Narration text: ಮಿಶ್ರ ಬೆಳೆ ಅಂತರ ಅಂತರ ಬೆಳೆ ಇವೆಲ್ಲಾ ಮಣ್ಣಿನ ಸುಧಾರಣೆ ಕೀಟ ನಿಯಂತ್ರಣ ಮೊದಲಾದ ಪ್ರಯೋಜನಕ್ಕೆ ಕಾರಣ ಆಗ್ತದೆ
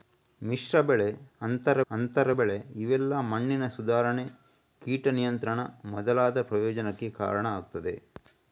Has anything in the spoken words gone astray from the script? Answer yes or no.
no